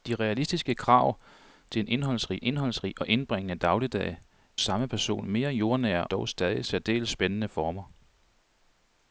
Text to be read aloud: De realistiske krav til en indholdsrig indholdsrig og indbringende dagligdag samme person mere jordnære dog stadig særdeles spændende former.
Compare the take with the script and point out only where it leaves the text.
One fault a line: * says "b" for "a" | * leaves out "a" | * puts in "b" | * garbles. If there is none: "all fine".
all fine